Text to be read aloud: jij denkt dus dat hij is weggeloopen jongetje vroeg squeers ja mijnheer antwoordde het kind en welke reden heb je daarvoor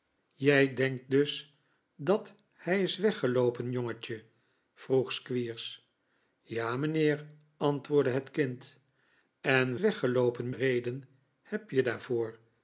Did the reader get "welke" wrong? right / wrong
wrong